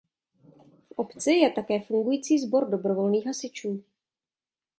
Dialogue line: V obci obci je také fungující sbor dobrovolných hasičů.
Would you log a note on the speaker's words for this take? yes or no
yes